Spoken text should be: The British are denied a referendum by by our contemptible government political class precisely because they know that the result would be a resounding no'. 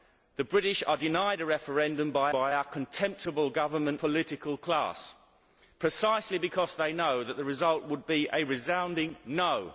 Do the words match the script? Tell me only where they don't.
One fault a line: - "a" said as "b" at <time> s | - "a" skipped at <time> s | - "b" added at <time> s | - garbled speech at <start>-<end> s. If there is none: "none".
none